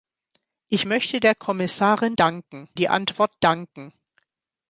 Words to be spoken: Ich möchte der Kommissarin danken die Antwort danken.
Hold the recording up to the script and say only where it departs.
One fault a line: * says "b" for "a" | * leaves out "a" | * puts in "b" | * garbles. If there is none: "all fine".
all fine